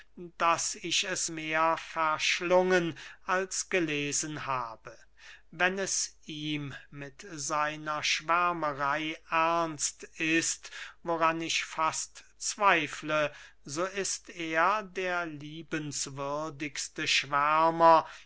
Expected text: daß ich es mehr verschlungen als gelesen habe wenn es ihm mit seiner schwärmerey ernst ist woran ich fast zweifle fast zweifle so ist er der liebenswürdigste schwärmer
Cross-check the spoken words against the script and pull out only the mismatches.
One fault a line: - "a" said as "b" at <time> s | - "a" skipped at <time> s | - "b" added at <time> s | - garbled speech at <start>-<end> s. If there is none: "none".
- "fast zweifle" skipped at 13.3 s